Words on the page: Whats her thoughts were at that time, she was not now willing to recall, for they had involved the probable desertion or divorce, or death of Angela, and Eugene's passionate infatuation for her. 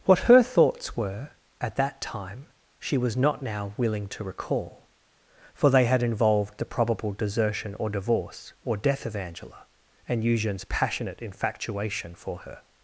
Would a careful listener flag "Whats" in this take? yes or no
yes